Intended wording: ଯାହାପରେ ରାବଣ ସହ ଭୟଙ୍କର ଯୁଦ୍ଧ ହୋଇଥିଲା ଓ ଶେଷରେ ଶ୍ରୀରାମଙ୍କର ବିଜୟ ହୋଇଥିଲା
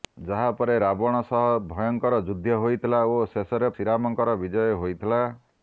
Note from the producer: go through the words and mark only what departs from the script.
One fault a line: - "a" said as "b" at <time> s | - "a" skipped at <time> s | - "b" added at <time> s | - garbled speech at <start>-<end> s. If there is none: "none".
none